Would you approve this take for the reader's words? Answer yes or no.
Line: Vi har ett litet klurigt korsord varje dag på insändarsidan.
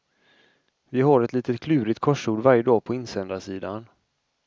yes